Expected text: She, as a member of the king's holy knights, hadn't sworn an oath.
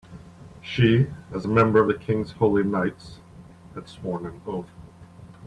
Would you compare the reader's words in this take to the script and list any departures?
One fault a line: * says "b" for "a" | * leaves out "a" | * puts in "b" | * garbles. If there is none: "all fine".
* says "had" for "hadn't"